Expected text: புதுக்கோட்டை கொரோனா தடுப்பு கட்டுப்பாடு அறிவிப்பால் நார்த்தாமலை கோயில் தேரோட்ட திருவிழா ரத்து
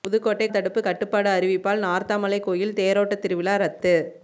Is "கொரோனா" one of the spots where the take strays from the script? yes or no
yes